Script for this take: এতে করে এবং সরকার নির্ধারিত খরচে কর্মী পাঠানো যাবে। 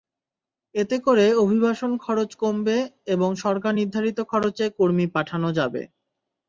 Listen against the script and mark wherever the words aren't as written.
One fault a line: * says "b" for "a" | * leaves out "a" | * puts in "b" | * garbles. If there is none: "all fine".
* puts in "অভিবাসন খরচ কমবে"